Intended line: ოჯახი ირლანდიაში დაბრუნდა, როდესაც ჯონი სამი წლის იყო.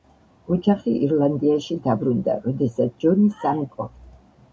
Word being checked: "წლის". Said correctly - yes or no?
no